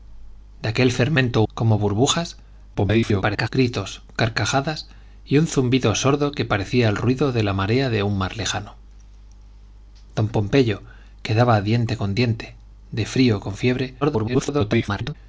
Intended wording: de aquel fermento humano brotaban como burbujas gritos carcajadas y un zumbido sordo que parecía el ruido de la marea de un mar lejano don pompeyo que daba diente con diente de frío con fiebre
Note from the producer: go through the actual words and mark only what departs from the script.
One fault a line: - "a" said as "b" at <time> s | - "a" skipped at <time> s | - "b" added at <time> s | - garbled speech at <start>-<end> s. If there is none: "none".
- "humano brotaban" skipped at 1.4 s
- garbled speech at 2.7-3.5 s
- garbled speech at 14.0-15.1 s